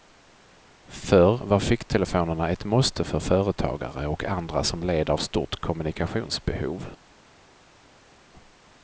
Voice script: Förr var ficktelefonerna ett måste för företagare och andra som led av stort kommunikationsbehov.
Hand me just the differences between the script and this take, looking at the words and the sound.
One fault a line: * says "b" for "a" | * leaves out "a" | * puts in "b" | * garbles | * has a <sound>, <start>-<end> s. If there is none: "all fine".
all fine